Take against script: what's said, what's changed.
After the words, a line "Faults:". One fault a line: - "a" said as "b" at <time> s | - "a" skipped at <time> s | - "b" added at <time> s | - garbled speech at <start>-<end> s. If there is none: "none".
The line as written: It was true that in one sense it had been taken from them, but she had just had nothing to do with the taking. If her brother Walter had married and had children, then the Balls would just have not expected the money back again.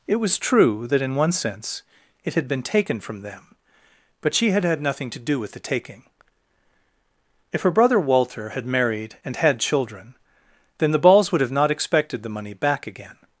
It was true that in one sense it had been taken from them, but she had had nothing to do with the taking. If her brother Walter had married and had children, then the Balls would have not expected the money back again.
Faults:
- "just" skipped at 4.6 s
- "just" skipped at 11.4 s